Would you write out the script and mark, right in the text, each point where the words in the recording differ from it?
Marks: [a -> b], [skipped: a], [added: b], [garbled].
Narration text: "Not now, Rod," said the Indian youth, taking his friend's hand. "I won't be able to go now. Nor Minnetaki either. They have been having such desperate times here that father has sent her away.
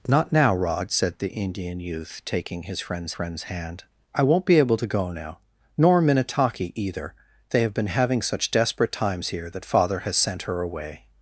"Not now, Rod," said the Indian youth, taking his friend's [added: friend's] hand. "I won't be able to go now. Nor Minnetaki either. They have been having such desperate times here that father has sent her away.